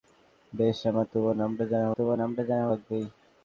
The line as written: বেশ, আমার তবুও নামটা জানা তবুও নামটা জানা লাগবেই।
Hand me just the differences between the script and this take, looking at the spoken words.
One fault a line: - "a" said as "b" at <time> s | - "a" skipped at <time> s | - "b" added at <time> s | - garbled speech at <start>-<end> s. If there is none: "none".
none